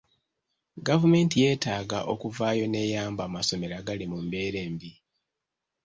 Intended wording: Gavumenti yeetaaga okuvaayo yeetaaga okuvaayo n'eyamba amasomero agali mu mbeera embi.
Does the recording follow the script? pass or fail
fail